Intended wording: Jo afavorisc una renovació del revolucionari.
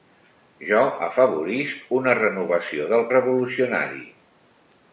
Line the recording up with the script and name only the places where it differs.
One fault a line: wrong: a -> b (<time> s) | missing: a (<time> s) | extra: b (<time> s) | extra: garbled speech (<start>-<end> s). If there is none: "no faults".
no faults